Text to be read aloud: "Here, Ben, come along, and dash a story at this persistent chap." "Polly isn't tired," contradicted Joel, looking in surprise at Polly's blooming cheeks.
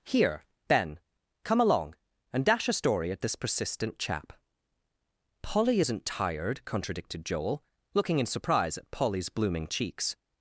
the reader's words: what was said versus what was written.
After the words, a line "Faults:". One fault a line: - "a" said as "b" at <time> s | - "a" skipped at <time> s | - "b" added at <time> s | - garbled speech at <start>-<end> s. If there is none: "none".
"Here, Ben, come along, and dash a story at this persistent chap." "Polly isn't tired," contradicted Joel, looking in surprise at Polly's blooming cheeks.
Faults:
none